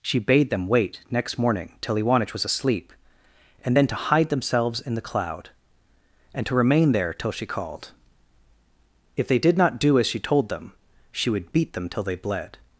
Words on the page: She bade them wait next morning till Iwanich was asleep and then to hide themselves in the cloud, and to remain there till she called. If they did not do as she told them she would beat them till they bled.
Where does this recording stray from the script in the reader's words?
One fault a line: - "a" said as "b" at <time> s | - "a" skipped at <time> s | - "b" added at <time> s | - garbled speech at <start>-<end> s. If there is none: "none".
none